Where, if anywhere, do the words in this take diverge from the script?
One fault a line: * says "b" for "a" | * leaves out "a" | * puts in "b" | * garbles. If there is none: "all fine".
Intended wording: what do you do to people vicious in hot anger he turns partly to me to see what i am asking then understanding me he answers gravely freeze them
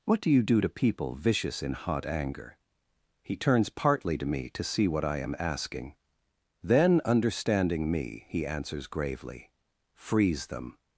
all fine